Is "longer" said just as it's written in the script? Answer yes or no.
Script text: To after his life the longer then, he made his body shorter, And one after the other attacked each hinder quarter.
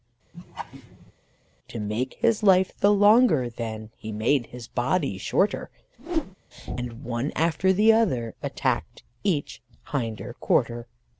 yes